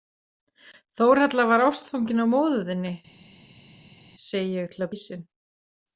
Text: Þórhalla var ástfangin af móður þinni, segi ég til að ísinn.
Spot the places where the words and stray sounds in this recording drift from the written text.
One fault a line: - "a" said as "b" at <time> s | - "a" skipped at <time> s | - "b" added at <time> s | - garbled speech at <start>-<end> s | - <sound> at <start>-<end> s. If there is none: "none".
none